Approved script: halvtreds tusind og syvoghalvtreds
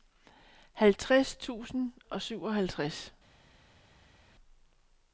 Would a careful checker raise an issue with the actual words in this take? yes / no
no